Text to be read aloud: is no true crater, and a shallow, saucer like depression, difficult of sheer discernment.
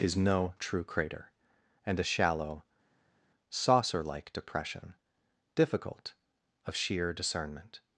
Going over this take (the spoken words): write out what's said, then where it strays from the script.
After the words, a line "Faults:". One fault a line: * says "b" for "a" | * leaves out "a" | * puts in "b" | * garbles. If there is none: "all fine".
is no true crater, and a shallow, saucer like depression, difficult of sheer discernment.
Faults:
all fine